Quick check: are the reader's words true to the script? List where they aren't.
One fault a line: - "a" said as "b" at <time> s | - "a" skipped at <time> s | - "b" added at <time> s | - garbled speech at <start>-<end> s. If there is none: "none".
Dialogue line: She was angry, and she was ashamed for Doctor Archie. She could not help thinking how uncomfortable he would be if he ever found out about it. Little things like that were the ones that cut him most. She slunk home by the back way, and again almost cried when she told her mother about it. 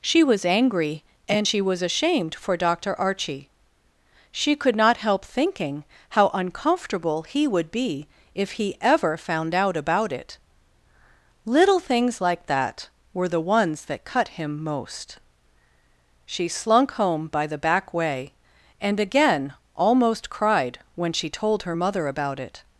none